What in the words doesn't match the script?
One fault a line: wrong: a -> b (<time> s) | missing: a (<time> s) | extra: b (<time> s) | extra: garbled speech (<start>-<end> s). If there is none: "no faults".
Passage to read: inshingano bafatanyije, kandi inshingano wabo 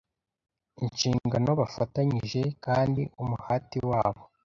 wrong: inshingano -> umuhati (3.2 s)